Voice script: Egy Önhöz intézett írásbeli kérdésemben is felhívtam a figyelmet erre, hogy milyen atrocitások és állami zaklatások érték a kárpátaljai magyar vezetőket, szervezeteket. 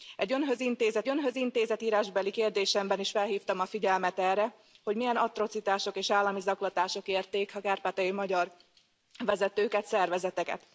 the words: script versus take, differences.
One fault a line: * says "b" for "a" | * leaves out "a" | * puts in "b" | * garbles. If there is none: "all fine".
* puts in "Önhöz intézett"